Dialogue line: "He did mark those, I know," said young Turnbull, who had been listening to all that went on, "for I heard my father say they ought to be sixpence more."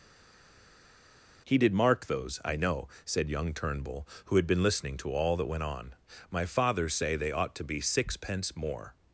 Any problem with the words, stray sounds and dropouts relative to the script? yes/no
yes